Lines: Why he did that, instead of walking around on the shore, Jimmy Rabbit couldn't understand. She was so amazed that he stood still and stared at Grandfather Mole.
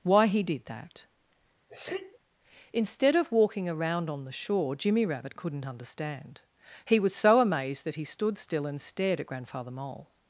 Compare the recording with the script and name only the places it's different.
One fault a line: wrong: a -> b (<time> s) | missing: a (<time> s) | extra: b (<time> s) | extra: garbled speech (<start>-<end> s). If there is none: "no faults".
wrong: She -> He (6.8 s)